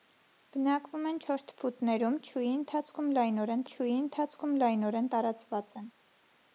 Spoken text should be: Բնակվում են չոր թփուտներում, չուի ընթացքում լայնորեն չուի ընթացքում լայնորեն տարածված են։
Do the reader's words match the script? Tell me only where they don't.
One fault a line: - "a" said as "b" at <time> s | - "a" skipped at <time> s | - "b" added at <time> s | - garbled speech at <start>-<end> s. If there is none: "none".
none